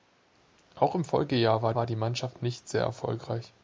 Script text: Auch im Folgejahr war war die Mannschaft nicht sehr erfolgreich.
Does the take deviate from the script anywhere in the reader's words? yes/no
no